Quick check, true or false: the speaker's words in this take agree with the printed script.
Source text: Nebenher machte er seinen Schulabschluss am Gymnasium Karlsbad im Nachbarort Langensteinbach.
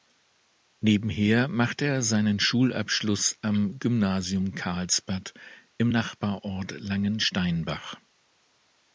true